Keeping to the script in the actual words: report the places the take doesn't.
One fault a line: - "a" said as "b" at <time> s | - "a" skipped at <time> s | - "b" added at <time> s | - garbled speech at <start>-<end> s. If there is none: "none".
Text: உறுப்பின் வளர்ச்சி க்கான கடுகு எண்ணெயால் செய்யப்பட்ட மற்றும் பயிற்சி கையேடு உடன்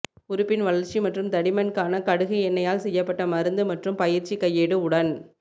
- "மற்றும் தடிமன்" added at 1.0 s
- "மருந்து" added at 3.3 s